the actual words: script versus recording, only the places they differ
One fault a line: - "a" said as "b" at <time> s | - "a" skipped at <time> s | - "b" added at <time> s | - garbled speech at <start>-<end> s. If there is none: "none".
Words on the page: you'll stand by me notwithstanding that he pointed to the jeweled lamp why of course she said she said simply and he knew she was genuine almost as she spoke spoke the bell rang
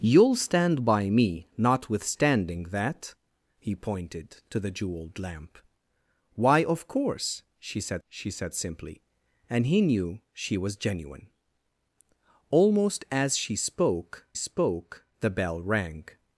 none